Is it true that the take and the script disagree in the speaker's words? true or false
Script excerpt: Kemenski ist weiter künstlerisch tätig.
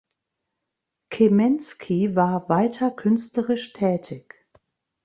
true